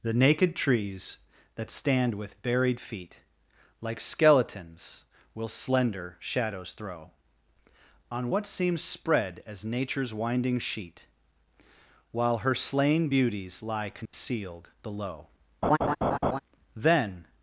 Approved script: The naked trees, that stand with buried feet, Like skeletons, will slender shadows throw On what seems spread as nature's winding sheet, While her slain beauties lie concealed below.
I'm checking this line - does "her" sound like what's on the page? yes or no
yes